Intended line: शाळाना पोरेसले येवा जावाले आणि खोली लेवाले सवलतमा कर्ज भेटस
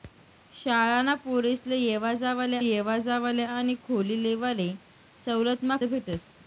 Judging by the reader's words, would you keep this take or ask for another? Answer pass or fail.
fail